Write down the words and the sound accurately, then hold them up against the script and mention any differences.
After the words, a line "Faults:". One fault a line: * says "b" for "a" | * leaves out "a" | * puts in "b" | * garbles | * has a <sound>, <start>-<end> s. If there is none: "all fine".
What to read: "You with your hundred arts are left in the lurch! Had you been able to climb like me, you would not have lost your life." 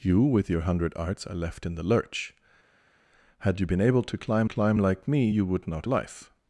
"You with your hundred arts are left in the lurch! Had you been able to climb climb like me, you would not life."
Faults:
* puts in "climb"
* leaves out "have lost your"